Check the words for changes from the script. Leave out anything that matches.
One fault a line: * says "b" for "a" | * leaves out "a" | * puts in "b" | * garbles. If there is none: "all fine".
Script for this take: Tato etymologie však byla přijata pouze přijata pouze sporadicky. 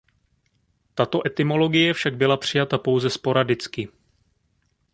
* leaves out "přijata pouze"